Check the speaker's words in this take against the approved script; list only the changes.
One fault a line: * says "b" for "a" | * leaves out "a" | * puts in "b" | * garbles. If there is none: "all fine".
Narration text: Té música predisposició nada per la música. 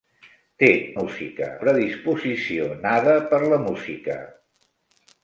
all fine